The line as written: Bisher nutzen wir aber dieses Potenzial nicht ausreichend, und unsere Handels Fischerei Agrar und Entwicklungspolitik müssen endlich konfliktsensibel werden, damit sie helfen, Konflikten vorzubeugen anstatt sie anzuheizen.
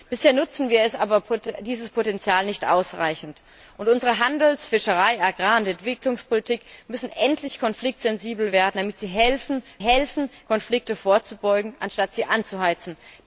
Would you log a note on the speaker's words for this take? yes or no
yes